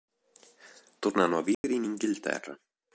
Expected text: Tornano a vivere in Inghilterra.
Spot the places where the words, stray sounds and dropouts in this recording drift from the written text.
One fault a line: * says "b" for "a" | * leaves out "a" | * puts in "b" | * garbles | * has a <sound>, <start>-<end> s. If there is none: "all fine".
* has a dropout, 1.5-1.6 s